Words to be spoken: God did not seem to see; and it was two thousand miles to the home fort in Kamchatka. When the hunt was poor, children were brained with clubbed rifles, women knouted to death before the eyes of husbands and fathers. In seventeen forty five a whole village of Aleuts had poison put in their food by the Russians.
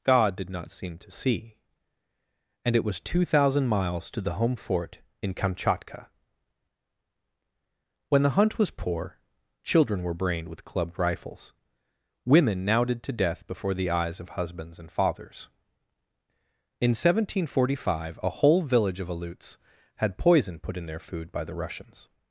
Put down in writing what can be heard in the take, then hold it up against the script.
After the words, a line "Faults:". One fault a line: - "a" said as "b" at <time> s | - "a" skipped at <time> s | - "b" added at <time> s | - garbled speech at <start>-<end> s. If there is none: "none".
God did not seem to see; and it was two thousand miles to the home fort in Kamchatka. When the hunt was poor, children were brained with clubbed rifles, women knouted to death before the eyes of husbands and fathers. In seventeen forty five a whole village of Aleuts had poison put in their food by the Russians.
Faults:
none